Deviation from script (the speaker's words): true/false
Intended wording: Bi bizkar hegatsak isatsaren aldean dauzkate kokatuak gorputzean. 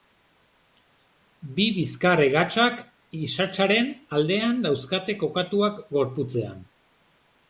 false